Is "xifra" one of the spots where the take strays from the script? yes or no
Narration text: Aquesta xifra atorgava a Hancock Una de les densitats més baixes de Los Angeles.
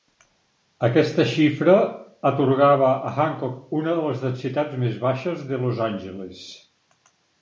no